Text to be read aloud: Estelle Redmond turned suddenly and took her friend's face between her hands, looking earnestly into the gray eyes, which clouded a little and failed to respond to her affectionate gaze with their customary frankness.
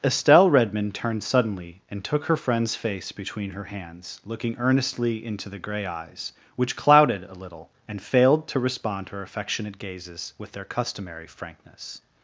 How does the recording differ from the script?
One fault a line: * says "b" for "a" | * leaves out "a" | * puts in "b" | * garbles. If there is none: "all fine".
* says "gazes" for "gaze"